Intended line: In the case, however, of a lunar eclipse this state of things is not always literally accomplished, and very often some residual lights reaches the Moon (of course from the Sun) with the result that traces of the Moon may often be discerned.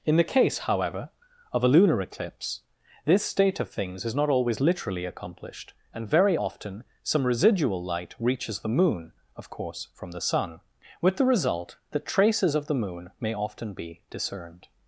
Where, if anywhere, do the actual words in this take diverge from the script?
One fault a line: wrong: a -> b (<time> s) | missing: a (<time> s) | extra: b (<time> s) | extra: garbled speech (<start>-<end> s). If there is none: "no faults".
wrong: lights -> light (7.8 s)